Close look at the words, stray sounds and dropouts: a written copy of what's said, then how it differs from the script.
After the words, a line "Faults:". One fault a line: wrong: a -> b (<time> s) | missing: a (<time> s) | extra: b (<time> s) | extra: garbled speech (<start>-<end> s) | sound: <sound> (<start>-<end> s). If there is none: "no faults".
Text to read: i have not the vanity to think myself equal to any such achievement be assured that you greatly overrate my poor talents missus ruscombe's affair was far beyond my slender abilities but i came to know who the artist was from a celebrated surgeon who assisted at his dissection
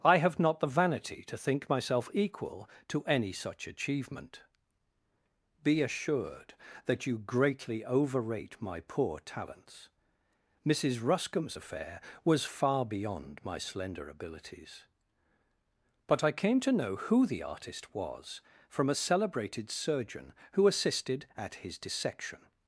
i have not the vanity to think myself equal to any such achievement be assured that you greatly overrate my poor talents missus ruscombe's affair was far beyond my slender abilities but i came to know who the artist was from a celebrated surgeon who assisted at his dissection
Faults:
no faults